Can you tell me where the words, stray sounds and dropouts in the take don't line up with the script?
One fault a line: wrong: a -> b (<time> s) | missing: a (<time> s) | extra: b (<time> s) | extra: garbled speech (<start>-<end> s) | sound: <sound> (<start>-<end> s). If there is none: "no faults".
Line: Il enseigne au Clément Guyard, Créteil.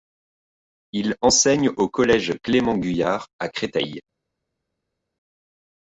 extra: collège (1.9 s)
extra: à (3.4 s)